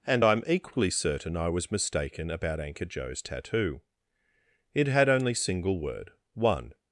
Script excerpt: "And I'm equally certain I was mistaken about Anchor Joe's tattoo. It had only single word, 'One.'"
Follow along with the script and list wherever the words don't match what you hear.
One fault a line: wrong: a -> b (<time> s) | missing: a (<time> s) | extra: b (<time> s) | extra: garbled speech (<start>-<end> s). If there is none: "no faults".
no faults